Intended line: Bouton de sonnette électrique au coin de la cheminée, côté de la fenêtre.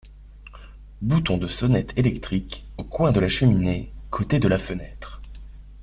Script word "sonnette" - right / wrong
right